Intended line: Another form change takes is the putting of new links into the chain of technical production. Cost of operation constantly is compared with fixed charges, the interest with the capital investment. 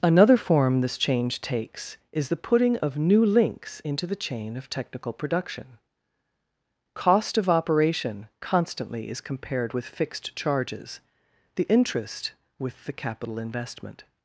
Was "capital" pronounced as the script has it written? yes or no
yes